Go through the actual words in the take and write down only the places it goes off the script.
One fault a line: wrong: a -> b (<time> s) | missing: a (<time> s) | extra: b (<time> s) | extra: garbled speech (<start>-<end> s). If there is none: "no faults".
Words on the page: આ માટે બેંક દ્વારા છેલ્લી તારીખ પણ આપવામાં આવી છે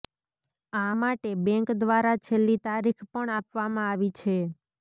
no faults